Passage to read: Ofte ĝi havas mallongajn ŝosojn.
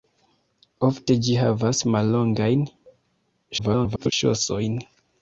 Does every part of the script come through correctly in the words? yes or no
no